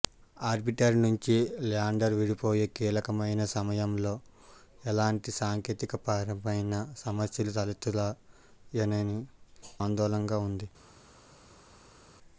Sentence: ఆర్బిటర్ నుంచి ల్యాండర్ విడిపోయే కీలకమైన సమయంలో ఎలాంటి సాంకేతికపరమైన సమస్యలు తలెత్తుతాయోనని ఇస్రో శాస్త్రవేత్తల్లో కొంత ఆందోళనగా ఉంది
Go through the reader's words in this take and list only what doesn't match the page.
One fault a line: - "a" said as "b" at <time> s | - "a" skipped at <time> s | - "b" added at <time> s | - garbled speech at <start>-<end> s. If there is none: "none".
- "ఇస్రో శాస్త్రవేత్తల్లో కొంత" skipped at 9.2 s